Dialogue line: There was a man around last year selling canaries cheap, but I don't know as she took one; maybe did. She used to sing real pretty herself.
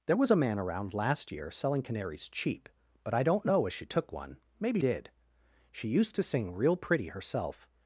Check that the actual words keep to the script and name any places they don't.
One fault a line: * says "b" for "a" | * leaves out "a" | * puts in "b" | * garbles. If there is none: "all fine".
all fine